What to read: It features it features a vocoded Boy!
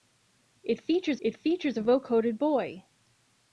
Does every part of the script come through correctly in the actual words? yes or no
yes